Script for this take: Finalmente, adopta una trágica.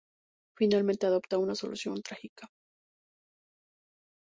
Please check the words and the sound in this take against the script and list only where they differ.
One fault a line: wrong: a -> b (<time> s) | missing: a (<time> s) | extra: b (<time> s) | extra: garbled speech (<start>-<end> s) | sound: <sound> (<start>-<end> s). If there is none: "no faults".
extra: solución (1.5 s)